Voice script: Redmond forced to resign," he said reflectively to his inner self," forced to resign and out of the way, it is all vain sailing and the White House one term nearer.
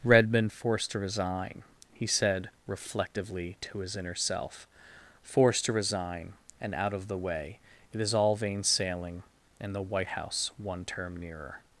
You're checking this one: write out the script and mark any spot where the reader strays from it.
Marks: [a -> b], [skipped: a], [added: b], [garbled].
Redmond forced to resign," he said reflectively to his inner self," forced to resign and out of the way, it is all vain sailing and the White House one term nearer.